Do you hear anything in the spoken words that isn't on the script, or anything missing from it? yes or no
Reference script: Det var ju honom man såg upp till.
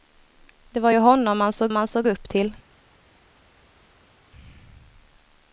yes